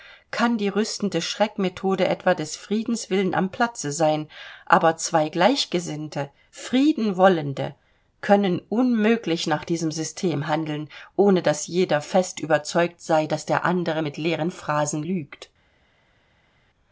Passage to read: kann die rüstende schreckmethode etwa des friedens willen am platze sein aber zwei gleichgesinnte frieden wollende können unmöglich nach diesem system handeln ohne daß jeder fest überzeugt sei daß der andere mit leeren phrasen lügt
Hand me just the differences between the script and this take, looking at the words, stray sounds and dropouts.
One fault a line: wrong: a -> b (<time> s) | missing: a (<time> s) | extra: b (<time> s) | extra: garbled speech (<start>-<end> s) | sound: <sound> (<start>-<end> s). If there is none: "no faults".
no faults